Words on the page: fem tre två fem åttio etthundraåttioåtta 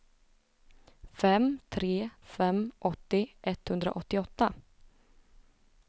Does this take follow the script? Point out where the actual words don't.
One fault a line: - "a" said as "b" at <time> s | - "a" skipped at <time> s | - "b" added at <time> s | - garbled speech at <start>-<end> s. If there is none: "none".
- "två" skipped at 2.1 s